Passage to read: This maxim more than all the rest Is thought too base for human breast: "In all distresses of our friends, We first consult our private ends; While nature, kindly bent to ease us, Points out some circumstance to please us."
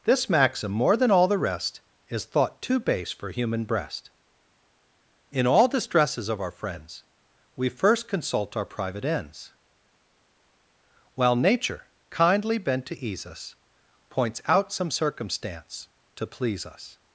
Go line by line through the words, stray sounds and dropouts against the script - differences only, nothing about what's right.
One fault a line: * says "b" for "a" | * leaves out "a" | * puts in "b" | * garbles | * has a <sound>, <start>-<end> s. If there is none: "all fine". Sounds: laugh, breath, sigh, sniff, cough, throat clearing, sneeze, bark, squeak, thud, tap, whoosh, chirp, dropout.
all fine